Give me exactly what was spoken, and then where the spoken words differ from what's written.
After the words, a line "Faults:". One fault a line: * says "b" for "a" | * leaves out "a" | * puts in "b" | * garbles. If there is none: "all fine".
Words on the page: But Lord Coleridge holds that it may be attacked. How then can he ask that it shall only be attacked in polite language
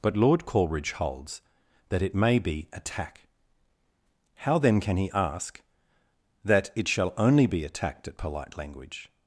But Lord Coleridge holds that it may be attack. How then can he ask that it shall only be attacked at polite language
Faults:
* says "attack" for "attacked"
* says "at" for "in"